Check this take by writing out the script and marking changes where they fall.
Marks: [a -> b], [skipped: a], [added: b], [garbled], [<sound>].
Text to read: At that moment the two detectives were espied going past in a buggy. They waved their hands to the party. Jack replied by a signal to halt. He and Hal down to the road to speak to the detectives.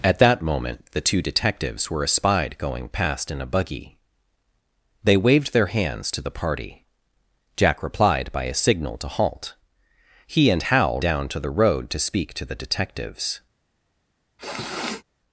At that moment the two detectives were espied going past in a buggy. They waved their hands to the party. Jack replied by a signal to halt. He and Hal down to the road to speak to the detectives. [sniff]